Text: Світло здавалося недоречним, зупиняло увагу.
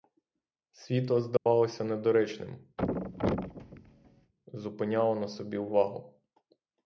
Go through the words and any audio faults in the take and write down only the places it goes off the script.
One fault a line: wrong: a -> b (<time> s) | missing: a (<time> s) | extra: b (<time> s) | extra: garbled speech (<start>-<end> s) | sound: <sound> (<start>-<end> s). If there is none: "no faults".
sound: dropout (1.4-1.5 s)
sound: thud (2.8-4.3 s)
extra: на собі (5.1 s)